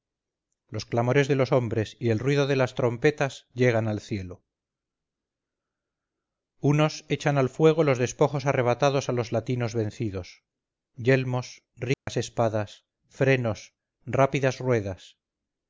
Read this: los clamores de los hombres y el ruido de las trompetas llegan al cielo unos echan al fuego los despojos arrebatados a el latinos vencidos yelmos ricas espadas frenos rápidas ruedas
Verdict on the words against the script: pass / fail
fail